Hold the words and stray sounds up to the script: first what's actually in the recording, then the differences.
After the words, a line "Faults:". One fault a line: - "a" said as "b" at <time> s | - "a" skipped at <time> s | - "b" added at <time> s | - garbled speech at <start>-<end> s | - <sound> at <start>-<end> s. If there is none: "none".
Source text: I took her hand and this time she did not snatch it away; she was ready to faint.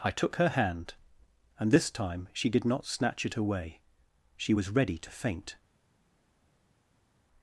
I took her hand and this time she did not snatch it away; she was ready to faint.
Faults:
none